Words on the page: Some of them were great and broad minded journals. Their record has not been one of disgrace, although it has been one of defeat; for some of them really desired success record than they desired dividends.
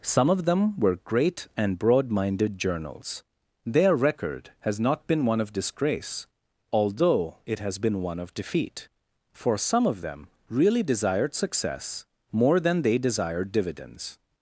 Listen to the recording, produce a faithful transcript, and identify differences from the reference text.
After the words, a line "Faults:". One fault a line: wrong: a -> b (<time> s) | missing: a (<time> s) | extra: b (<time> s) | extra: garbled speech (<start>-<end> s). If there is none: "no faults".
Some of them were great and broad minded journals. Their record has not been one of disgrace, although it has been one of defeat; for some of them really desired success more than they desired dividends.
Faults:
wrong: record -> more (12.3 s)